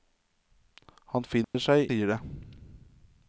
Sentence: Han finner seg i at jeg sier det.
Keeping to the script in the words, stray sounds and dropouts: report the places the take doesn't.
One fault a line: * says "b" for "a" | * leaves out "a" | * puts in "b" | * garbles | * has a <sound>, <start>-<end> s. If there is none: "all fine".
* has a dropout, 1.4-1.5 s
* leaves out "i at jeg"